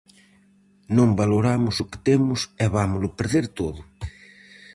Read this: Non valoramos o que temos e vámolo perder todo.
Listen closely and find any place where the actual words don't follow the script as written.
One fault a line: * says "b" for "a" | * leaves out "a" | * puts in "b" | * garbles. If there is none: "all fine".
all fine